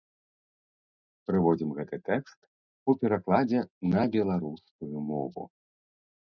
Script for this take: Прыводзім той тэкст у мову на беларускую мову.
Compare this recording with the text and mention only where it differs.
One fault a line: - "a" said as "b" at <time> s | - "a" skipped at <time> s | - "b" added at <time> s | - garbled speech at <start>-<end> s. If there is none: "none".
- "той" said as "гэты" at 1.8 s
- "мову" said as "перакладзе" at 3.0 s